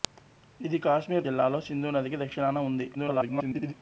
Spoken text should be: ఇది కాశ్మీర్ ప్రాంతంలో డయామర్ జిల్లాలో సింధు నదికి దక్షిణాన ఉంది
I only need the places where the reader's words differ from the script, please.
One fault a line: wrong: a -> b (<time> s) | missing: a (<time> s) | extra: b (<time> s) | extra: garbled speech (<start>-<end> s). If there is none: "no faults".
missing: ప్రాంతంలో డయామర్ (1.3 s)
extra: garbled speech (2.9-3.7 s)